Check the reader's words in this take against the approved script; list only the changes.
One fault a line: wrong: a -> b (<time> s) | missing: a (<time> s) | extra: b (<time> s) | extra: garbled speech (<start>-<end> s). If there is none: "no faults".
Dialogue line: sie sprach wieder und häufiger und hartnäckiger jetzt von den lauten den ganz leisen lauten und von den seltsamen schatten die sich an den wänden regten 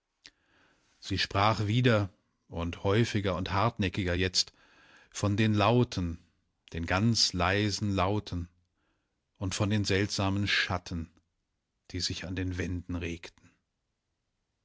no faults